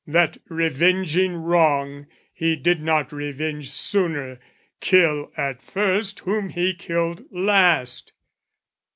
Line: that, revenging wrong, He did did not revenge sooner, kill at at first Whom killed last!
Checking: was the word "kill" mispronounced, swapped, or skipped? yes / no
no